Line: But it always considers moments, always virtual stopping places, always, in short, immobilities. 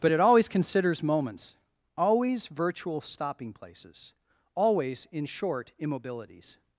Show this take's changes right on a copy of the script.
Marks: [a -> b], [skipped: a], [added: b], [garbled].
But it always considers moments, always virtual stopping places, always, in short, immobilities.